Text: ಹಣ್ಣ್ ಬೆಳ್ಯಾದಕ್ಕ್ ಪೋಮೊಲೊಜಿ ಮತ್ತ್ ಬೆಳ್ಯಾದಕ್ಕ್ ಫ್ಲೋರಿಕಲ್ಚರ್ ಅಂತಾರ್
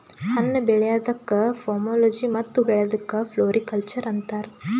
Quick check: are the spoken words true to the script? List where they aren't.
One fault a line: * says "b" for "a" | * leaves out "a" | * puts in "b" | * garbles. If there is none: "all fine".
all fine